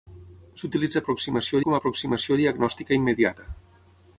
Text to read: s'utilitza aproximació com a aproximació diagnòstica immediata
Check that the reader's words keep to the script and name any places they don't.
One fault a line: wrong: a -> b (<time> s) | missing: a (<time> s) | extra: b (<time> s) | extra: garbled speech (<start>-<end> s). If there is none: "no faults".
no faults